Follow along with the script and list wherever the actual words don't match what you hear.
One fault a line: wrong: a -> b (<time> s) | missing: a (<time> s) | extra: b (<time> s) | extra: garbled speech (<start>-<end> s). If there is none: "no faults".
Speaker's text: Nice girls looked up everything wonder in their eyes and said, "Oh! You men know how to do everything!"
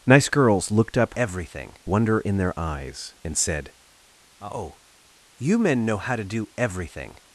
no faults